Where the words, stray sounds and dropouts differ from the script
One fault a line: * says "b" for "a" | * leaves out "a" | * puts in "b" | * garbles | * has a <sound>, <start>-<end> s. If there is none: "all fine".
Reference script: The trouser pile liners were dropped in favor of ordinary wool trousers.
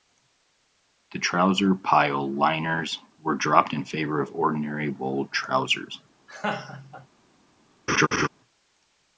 * has a laugh, 6.3-7.1 s
* has a laugh, 7.9-8.3 s